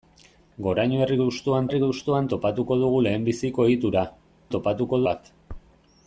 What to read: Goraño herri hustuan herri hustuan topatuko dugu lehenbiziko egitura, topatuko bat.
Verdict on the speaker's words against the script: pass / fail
pass